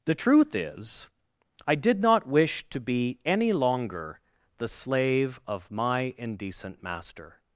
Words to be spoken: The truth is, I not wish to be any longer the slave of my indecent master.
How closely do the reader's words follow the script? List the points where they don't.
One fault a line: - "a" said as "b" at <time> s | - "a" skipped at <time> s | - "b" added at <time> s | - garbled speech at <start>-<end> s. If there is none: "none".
- "did" added at 1.8 s